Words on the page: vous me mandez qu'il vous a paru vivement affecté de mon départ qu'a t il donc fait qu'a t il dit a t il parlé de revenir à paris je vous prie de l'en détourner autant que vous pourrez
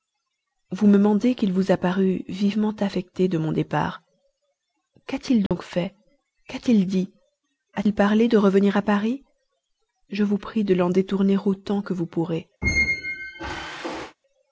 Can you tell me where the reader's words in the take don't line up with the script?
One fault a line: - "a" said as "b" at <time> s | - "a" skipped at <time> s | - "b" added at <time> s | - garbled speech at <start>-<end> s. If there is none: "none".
- "t" skipped at 7.8 s